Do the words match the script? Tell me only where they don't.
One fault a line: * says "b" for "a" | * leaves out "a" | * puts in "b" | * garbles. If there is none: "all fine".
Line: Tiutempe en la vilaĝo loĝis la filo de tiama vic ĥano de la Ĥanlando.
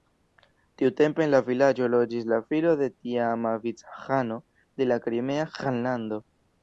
* puts in "Krimea"